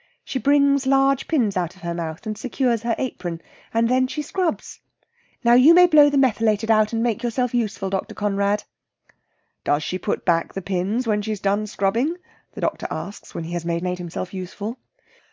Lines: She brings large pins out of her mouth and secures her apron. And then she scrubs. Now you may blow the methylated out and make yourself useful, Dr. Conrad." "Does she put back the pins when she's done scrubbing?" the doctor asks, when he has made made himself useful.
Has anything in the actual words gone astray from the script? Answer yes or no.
no